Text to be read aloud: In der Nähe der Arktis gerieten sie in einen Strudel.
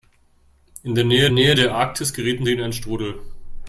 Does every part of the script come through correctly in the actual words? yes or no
no